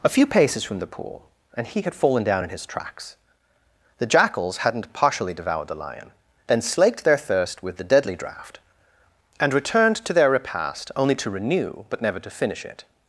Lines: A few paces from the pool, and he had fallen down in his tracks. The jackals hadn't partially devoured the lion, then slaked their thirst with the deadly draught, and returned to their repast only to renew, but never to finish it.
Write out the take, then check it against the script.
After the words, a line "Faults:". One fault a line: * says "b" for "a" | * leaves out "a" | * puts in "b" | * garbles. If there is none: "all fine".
A few paces from the pool, and he had fallen down in his tracks. The jackals hadn't partially devoured the lion, then slaked their thirst with the deadly draught, and returned to their repast only to renew, but never to finish it.
Faults:
all fine